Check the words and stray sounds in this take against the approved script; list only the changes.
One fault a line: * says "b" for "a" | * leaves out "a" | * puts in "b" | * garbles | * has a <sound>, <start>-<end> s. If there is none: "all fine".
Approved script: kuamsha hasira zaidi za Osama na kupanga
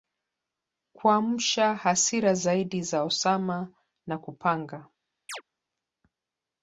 * has a chirp, 5.3-5.4 s